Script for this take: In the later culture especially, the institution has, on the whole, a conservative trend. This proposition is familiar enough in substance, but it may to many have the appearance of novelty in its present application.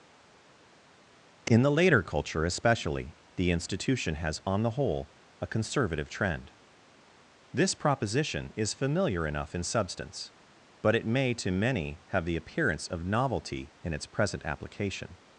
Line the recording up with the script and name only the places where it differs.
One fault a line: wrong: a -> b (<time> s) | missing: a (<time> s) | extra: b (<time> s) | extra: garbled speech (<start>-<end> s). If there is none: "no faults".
no faults